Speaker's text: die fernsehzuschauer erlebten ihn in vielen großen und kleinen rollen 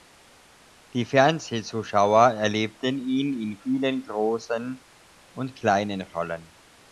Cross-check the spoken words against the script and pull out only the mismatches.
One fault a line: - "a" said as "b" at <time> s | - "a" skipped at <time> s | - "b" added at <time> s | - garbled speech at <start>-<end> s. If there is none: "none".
none